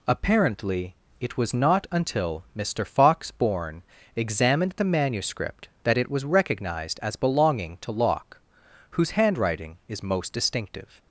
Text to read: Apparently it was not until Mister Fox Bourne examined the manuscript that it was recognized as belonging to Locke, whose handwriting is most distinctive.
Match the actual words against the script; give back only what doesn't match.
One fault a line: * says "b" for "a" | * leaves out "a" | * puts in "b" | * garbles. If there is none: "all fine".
all fine